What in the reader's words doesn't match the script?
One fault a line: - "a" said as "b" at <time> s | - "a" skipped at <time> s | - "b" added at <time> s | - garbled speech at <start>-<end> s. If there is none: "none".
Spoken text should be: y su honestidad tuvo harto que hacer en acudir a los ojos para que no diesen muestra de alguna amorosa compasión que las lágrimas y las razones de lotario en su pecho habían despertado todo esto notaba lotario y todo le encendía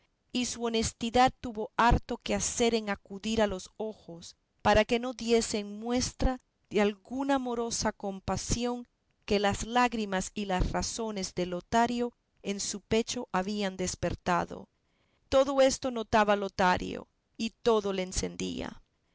none